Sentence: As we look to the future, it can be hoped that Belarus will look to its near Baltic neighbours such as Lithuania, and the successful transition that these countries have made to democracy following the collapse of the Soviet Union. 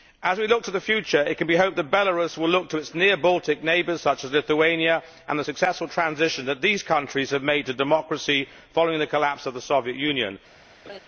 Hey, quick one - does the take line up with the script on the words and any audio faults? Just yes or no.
no